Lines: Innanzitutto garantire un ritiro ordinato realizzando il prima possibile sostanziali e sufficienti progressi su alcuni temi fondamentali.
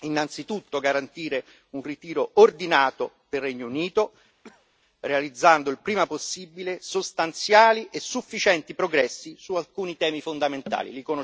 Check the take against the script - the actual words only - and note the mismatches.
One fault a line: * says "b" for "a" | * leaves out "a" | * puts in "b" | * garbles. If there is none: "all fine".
* puts in "del Regno Unito"